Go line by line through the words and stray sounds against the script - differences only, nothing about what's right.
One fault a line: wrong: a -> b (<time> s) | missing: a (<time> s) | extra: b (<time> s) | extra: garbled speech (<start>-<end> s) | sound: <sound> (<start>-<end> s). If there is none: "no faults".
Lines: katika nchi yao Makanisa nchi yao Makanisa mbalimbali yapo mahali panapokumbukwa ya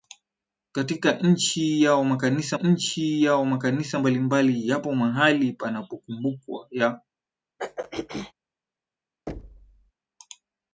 sound: throat clearing (7.6-8.3 s)
sound: thud (9.3-9.9 s)